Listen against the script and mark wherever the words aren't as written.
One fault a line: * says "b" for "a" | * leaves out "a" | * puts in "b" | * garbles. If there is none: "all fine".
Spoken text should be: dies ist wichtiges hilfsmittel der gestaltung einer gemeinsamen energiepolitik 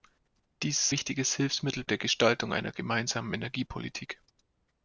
all fine